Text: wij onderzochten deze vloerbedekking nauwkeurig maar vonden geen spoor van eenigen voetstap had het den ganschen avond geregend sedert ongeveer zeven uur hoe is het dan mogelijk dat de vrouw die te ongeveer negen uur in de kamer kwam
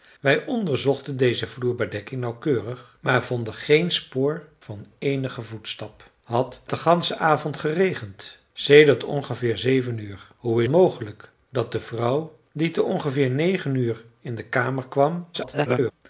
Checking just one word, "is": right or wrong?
wrong